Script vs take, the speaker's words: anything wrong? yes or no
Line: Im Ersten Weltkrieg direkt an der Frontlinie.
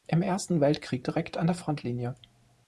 no